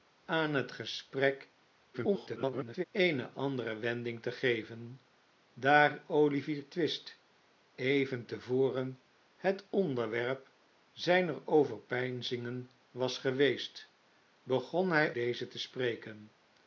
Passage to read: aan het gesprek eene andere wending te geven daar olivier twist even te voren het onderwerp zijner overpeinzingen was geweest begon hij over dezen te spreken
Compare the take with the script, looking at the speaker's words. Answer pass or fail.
fail